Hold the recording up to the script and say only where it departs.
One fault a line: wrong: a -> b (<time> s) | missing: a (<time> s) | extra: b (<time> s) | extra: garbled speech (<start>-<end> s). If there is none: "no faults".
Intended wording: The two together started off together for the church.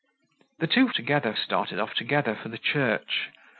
no faults